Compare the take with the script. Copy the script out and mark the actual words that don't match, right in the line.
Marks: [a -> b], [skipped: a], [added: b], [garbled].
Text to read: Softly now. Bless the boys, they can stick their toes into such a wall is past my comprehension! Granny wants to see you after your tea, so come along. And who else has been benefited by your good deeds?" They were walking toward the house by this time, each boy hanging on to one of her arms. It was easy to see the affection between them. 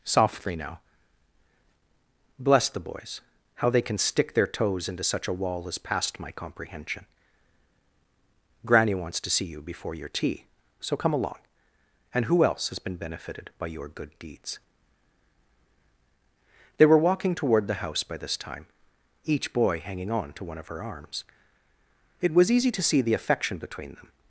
Softly now. Bless the boys, [added: how] they can stick their toes into such a wall is past my comprehension! Granny wants to see you [after -> before] your tea, so come along. And who else has been benefited by your good deeds?" They were walking toward the house by this time, each boy hanging on to one of her arms. It was easy to see the affection between them.